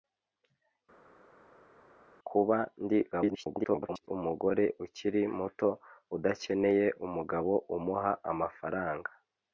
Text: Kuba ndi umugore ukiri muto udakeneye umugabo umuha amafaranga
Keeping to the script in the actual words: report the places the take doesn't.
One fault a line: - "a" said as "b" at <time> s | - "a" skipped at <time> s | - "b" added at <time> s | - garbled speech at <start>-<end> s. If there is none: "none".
- garbled speech at 3.1-4.1 s